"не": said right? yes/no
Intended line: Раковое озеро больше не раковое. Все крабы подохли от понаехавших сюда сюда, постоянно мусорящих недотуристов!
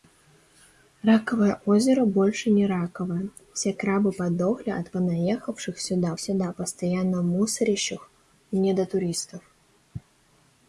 yes